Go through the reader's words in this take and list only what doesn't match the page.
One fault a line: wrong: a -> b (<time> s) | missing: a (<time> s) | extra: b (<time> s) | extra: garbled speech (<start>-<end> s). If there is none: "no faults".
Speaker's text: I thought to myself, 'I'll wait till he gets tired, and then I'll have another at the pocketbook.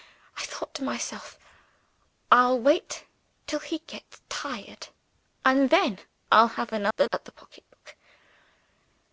no faults